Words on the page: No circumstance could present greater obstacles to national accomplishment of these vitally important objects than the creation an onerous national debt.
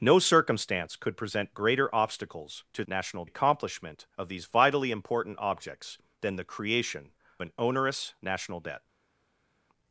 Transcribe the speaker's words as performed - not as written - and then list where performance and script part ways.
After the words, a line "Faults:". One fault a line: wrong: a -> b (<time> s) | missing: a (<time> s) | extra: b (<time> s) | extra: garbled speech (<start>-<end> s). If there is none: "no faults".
No circumstance could present greater obstacles to national accomplishment of these vitally important objects than the creation an onerous national debt.
Faults:
no faults